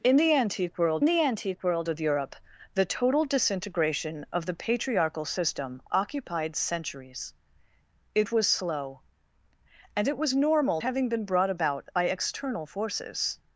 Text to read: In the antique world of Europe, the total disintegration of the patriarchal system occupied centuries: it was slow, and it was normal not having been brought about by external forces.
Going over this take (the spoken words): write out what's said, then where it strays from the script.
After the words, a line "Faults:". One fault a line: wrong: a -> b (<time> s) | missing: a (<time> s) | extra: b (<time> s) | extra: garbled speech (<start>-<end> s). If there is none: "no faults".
In the antique world the antique world of Europe, the total disintegration of the patriarchal system occupied centuries: it was slow, and it was normal having been brought about by external forces.
Faults:
extra: the antique world (1.0 s)
missing: not (10.8 s)